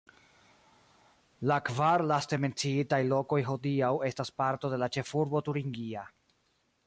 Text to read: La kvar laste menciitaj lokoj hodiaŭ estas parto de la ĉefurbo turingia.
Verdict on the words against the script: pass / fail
pass